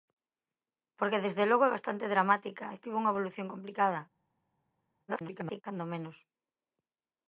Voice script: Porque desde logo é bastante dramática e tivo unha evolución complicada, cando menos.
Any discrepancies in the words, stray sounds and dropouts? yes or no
yes